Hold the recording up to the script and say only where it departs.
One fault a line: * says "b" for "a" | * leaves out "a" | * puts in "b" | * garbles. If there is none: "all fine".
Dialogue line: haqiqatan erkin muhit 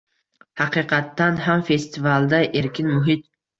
* puts in "ham festivalda"